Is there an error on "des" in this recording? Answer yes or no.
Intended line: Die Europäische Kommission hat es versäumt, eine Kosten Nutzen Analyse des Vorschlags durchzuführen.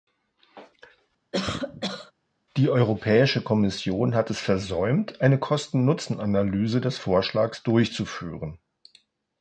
no